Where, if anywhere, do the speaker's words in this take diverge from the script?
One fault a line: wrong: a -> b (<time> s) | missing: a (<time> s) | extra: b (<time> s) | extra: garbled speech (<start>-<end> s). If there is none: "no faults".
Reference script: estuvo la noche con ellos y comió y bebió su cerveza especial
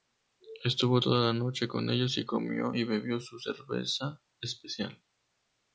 extra: toda (1.0 s)